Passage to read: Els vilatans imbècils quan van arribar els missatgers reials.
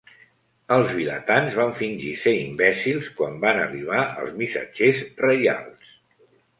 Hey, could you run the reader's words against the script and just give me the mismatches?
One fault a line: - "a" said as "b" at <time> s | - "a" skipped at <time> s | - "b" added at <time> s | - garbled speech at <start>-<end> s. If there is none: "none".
- "van fingir ser" added at 1.6 s